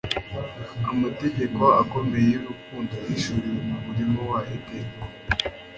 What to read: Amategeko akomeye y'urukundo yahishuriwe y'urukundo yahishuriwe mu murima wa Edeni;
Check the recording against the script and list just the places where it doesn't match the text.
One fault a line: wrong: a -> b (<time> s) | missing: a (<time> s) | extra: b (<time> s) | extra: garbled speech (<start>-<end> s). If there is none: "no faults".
missing: y'urukundo yahishuriwe (3.6 s)